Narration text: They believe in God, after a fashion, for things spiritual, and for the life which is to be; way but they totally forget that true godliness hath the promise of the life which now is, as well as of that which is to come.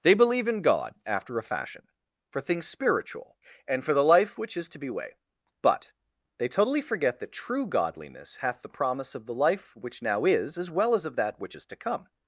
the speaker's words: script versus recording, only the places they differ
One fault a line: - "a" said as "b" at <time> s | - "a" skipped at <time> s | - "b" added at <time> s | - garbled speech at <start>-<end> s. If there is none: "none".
none